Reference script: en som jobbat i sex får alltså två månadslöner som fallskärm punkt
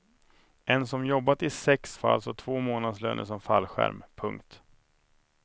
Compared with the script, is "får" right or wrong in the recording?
right